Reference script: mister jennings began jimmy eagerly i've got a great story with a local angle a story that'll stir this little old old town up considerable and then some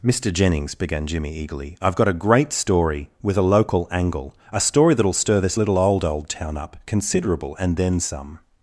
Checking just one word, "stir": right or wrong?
right